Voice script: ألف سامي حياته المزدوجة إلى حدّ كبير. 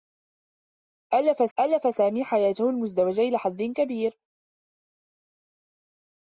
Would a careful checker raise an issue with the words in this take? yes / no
yes